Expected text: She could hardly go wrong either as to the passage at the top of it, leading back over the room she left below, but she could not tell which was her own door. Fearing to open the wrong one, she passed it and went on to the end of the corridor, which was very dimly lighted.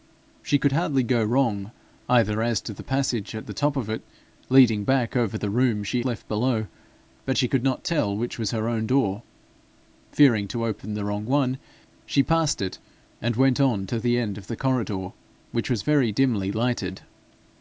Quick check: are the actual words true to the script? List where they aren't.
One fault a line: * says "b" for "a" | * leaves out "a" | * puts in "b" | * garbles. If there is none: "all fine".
all fine